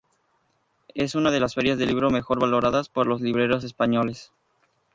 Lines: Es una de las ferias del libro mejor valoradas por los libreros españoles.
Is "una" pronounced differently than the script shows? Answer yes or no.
no